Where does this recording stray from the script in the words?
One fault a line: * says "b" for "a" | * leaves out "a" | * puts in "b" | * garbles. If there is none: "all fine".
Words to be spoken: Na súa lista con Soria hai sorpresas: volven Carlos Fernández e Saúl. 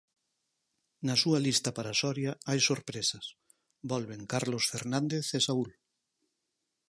* says "para" for "con"